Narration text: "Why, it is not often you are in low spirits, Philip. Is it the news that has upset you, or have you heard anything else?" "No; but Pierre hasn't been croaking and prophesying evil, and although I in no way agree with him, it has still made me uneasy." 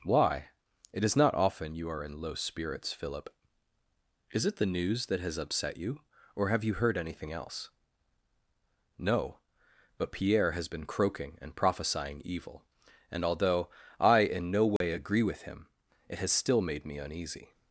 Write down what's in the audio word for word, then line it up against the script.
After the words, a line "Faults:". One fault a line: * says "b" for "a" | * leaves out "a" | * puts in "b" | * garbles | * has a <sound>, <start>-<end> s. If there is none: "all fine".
"Why, it is not often you are in low spirits, Philip. Is it the news that has upset you, or have you heard anything else?" "No; but Pierre has been croaking and prophesying evil, and although I in no way agree with him, it has still made me uneasy."
Faults:
* says "has" for "hasn't"
* has a dropout, 14.8-14.8 s